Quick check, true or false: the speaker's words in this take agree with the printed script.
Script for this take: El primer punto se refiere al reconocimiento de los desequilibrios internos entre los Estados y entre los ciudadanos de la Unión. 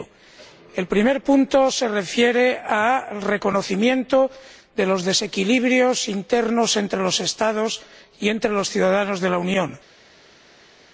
true